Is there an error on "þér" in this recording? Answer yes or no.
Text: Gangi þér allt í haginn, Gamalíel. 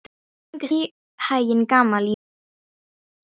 yes